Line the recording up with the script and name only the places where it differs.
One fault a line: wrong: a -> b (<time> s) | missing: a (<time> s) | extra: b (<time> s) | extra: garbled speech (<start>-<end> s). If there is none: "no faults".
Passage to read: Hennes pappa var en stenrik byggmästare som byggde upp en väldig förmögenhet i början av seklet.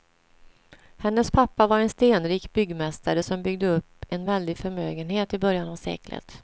no faults